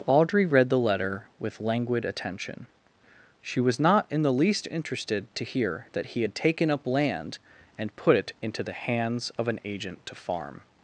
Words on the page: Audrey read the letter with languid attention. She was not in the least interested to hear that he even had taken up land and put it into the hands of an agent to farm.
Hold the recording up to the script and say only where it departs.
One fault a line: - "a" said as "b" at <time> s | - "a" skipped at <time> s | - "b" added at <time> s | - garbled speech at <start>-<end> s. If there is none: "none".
- "even" skipped at 6.2 s